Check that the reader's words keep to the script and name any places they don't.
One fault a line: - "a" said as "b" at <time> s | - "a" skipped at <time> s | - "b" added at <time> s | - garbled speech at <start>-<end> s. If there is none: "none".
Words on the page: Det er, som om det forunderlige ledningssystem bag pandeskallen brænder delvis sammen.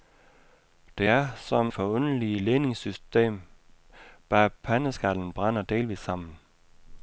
- "om det" skipped at 1.7 s